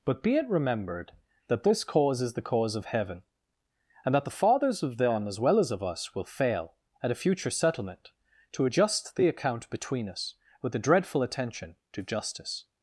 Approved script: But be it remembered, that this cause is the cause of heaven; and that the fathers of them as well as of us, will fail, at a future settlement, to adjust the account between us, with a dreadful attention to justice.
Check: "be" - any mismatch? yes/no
no